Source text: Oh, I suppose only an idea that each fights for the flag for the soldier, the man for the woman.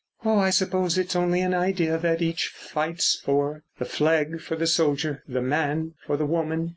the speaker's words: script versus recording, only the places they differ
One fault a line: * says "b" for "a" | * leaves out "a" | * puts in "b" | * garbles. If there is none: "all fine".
* puts in "it's"